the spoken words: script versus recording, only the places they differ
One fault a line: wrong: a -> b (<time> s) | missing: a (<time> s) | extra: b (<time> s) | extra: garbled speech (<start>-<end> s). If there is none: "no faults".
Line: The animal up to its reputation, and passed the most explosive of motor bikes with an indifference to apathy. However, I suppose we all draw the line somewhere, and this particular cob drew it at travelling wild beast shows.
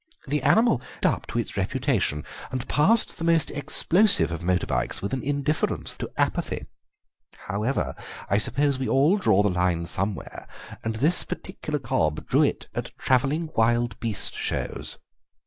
no faults